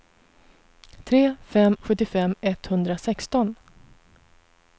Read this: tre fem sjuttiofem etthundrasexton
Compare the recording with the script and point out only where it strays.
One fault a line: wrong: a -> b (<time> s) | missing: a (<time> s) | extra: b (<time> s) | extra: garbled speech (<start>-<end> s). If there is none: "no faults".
no faults